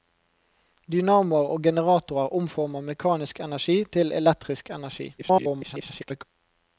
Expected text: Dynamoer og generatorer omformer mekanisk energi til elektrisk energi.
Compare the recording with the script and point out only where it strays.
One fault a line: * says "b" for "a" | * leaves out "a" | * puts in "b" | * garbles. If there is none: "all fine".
* garbles